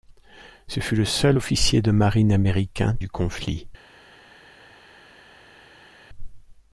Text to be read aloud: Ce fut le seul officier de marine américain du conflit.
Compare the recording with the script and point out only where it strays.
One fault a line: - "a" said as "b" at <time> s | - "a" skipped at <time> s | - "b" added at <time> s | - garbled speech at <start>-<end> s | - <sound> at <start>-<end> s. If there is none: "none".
none